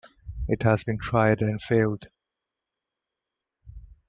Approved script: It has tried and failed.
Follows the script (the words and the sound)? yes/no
no